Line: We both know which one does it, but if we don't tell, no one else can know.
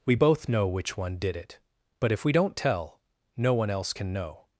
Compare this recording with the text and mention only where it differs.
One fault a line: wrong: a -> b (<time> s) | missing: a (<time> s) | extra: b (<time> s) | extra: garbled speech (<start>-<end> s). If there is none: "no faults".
wrong: does -> did (1.2 s)